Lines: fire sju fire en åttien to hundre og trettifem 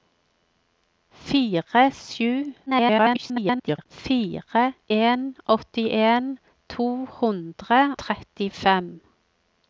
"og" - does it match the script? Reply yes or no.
no